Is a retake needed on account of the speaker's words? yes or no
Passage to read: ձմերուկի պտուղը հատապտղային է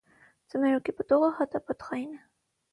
no